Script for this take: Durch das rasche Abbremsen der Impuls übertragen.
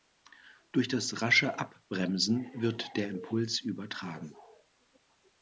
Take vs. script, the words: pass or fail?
fail